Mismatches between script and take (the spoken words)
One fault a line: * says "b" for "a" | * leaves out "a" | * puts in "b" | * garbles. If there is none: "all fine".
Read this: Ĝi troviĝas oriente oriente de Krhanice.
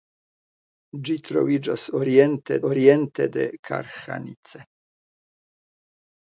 all fine